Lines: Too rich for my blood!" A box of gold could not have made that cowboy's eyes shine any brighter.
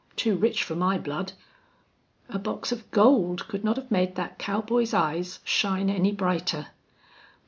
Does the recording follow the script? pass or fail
pass